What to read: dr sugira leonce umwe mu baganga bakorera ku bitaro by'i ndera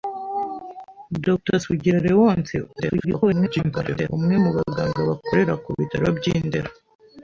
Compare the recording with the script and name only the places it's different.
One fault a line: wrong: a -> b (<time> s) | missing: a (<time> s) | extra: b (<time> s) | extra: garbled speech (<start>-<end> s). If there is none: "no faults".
extra: garbled speech (2.7-4.1 s)